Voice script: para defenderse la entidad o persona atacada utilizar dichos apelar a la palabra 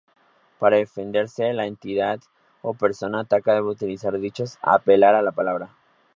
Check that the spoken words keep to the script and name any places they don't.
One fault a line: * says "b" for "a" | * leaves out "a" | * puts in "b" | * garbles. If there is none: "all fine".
* puts in "debe"